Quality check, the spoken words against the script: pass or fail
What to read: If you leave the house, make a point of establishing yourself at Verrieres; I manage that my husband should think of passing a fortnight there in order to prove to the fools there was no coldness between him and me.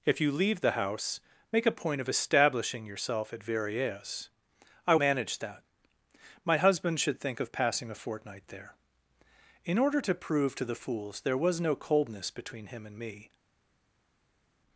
pass